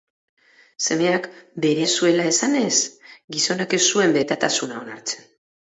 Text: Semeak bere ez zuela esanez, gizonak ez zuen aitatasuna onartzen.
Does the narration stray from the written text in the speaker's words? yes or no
no